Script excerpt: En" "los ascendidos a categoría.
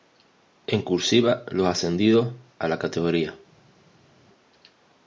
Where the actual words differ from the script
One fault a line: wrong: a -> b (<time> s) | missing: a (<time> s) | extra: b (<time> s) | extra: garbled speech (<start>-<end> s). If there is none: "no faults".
extra: cursiva (0.8 s)
extra: la (2.7 s)